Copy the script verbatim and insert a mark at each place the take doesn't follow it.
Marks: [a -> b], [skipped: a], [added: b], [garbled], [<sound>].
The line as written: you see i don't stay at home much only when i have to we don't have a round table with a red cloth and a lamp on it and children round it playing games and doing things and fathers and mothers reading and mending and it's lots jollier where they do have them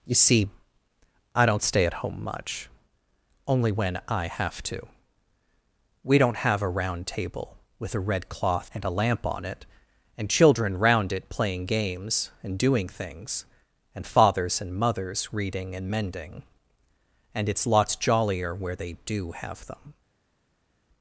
you see i don't stay at home much only when i have to we don't have a round table with a red cloth and a lamp on it and children round it playing games and doing things and fathers and mothers reading and mending and it's lots jollier where they do have them